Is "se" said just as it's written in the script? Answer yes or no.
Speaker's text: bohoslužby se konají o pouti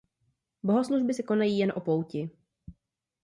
yes